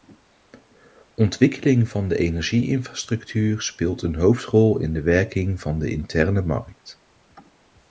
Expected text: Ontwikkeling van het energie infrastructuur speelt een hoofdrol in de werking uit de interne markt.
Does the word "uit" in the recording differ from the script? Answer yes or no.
yes